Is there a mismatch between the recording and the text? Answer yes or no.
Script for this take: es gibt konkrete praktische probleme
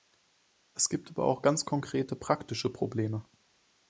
yes